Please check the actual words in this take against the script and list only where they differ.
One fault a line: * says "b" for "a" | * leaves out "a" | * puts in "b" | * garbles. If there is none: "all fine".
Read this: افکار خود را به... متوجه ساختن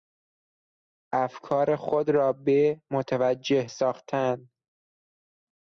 all fine